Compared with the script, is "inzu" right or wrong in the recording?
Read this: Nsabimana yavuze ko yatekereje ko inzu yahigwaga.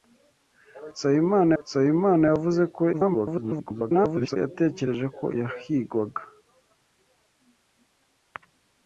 wrong